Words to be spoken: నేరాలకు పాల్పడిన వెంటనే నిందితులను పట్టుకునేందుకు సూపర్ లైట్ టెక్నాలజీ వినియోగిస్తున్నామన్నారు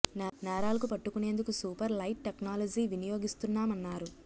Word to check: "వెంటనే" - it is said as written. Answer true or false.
false